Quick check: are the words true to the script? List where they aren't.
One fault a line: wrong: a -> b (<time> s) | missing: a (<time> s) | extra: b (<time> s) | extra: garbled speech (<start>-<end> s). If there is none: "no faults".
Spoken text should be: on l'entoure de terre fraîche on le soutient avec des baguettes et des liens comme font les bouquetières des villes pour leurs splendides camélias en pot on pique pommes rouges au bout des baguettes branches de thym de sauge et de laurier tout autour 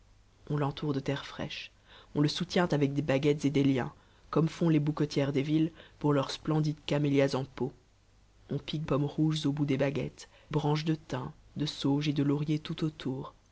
no faults